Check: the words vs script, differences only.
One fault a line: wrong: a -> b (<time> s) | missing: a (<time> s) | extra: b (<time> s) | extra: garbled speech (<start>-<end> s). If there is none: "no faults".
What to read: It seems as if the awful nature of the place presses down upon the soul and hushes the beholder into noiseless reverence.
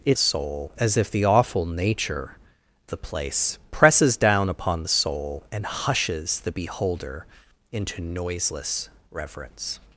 wrong: seems -> soul (0.2 s)
missing: of (2.4 s)